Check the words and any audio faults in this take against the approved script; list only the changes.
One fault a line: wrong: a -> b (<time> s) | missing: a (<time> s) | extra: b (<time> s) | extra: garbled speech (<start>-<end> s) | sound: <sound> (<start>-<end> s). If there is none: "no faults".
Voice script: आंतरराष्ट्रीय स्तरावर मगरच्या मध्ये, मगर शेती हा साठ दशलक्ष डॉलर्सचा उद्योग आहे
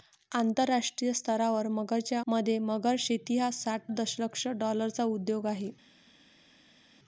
no faults